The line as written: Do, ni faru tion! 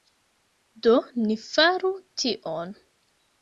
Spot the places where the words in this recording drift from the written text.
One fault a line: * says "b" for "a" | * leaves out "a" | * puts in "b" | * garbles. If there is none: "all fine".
all fine